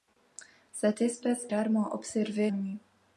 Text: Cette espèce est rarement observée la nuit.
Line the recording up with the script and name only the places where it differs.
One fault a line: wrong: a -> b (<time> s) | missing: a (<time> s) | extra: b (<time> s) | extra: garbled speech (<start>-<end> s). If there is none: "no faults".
missing: est (1.4 s)
missing: la (2.5 s)